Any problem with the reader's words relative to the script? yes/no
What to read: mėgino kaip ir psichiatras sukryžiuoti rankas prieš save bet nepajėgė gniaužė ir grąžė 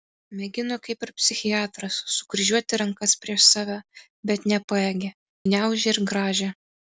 no